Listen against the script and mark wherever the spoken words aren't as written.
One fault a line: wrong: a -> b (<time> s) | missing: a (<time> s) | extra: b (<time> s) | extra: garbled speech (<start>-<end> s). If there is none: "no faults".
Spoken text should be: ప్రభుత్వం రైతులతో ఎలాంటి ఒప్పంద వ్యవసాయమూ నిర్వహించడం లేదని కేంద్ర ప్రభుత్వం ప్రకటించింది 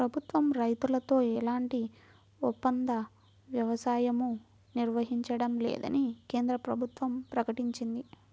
no faults